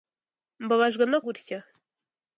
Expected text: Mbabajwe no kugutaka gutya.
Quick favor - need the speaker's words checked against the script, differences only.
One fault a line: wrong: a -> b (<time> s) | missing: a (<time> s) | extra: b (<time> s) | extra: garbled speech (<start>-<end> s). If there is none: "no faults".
missing: kugutaka (1.2 s)